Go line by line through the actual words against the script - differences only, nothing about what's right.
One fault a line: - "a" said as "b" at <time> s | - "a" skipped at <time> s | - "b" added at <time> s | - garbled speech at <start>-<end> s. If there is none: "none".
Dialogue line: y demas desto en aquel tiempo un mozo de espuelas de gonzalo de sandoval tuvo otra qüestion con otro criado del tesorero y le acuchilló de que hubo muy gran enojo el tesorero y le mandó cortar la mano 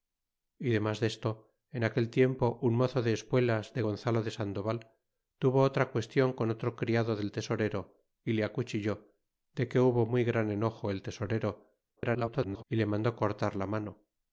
- garbled speech at 12.0-12.6 s